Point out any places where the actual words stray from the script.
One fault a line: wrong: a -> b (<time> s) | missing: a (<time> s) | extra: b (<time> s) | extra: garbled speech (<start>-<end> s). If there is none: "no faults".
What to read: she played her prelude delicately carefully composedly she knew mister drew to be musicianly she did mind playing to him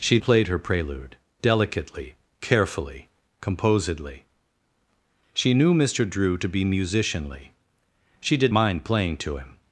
no faults